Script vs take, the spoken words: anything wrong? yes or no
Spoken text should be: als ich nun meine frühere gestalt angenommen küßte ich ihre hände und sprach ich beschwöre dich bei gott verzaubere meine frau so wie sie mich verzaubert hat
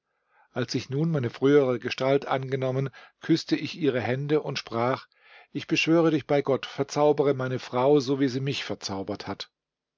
no